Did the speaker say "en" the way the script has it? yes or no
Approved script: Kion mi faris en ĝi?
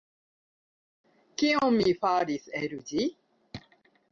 no